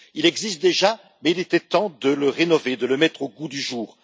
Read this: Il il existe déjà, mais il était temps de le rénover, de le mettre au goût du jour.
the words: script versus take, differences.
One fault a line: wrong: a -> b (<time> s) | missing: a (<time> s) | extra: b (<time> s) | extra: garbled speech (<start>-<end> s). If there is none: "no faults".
missing: il (0.2 s)